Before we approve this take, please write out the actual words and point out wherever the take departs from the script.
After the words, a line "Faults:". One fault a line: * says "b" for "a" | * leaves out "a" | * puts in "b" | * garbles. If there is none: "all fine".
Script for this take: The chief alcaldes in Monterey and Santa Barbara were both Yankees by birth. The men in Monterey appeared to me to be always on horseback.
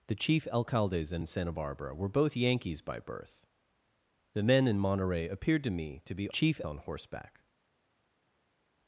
The chief alcaldes in And Santa Barbara were both Yankees by birth. The men in Monterey appeared to me to be chief on horseback.
Faults:
* leaves out "Monterey"
* says "chief" for "always"